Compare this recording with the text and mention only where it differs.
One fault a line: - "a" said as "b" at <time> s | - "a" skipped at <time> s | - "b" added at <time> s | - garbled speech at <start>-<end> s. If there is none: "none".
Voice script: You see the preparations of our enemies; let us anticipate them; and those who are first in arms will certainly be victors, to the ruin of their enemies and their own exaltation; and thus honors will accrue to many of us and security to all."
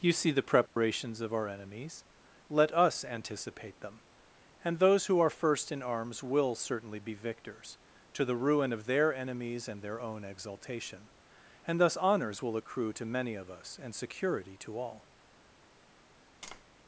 none